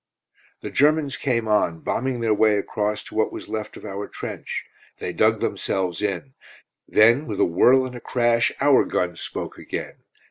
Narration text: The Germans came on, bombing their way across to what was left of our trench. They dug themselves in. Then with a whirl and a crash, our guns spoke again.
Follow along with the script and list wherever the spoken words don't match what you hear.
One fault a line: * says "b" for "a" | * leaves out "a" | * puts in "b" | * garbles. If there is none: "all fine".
all fine